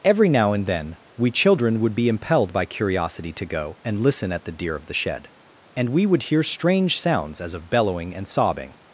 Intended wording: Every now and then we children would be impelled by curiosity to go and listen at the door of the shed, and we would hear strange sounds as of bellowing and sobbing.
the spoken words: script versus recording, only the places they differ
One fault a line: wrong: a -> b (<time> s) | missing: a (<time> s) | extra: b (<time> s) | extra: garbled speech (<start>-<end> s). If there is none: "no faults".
wrong: door -> deer (4.5 s)